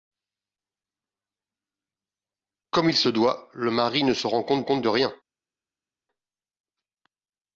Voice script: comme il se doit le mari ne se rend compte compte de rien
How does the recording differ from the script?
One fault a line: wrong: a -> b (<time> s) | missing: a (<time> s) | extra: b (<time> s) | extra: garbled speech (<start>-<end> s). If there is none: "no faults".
no faults